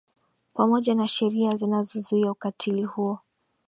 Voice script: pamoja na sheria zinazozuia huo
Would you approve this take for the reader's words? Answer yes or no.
no